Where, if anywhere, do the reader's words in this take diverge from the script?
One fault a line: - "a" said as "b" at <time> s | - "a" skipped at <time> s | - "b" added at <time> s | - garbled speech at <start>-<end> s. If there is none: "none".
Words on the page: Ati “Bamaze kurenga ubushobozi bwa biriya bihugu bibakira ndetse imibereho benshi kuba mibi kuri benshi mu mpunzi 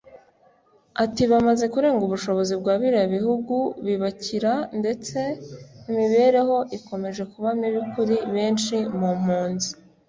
- "benshi" said as "ikomeje" at 6.8 s